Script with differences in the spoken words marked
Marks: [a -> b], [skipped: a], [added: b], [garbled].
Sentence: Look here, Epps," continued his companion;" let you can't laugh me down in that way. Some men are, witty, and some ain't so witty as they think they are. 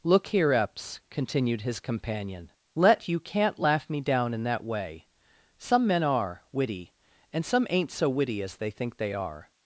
Look here, Epps," continued his companion;" let you can't laugh me down in that way. Some men are, witty, and some ain't so witty as they think they are.